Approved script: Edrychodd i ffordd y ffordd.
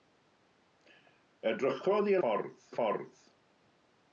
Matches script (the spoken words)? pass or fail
pass